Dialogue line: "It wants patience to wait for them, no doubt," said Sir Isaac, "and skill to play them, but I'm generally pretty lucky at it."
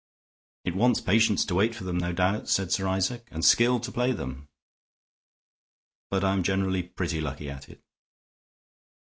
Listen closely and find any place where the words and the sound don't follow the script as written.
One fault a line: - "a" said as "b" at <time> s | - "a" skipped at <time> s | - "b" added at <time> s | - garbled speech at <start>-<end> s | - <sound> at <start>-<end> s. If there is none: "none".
none